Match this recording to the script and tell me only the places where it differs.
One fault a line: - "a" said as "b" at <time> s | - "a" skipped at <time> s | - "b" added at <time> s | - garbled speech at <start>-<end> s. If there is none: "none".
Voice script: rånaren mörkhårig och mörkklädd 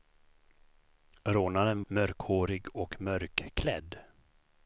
none